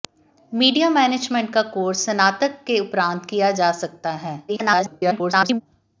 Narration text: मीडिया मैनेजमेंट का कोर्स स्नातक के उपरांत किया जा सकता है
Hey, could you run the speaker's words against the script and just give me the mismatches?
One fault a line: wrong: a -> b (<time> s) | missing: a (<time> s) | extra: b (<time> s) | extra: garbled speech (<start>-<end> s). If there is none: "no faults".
extra: garbled speech (4.5-5.6 s)